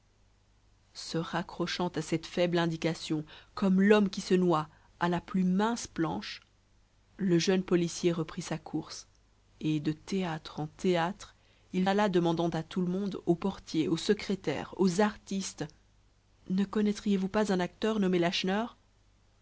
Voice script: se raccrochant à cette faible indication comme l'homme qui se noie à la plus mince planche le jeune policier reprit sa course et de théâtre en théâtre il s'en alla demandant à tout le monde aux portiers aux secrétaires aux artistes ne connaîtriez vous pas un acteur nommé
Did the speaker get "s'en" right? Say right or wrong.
wrong